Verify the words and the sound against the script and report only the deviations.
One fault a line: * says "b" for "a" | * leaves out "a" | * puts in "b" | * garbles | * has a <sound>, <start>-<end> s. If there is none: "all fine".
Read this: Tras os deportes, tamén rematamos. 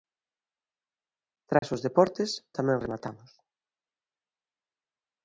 * has a dropout, 1.6-1.6 s